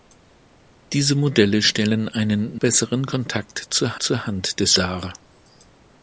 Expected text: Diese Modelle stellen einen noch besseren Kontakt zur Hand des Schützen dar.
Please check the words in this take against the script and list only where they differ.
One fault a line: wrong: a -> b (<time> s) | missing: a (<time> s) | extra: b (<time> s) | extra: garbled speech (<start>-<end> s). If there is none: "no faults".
missing: noch (2.6 s)
extra: zur (4.0 s)
missing: Schützen (4.8 s)